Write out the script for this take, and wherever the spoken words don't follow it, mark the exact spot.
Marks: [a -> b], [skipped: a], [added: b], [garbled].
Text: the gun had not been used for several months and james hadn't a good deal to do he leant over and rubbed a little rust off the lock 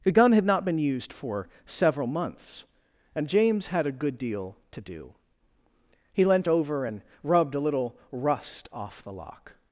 the gun had not been used for several months and james [hadn't -> had] a good deal to do he leant over and rubbed a little rust off the lock